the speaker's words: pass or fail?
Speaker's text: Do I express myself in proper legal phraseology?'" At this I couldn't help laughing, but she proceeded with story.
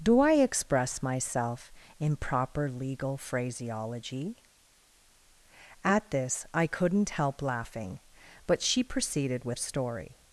pass